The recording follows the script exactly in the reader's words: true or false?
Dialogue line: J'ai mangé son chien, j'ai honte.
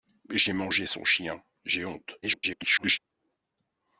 false